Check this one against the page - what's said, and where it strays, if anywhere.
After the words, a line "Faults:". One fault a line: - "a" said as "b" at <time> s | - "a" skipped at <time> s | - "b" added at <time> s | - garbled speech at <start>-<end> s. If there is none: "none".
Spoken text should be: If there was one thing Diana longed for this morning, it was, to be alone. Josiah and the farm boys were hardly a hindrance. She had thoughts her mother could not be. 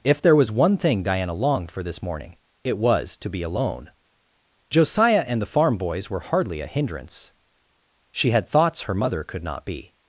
If there was one thing Diana longed for this morning, it was, to be alone. Josiah and the farm boys were hardly a hindrance. She had thoughts her mother could not be.
Faults:
none